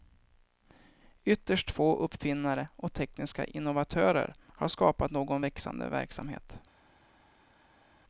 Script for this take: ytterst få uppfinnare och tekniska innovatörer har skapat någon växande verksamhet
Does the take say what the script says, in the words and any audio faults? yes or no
yes